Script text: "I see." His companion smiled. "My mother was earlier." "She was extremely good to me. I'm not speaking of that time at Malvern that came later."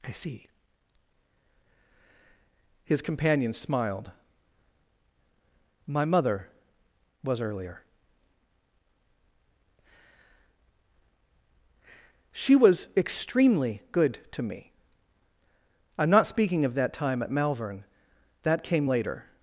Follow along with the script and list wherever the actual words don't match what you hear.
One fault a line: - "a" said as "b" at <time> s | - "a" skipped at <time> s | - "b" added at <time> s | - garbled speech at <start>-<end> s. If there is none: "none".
none